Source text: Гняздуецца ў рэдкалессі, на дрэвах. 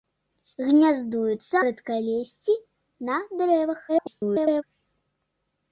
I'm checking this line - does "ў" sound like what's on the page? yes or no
no